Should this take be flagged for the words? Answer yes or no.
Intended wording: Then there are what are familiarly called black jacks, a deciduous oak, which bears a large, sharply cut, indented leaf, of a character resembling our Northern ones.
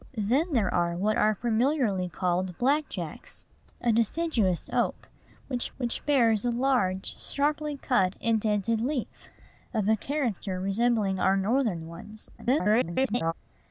yes